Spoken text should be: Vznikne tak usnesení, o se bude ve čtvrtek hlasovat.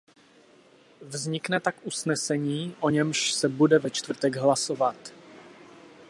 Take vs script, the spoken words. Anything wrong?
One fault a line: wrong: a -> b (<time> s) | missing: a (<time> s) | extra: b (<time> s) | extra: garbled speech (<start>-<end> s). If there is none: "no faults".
extra: němž (2.9 s)